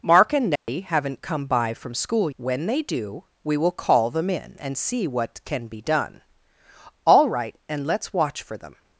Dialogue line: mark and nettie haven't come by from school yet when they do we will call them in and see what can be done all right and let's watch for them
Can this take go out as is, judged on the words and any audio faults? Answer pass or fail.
fail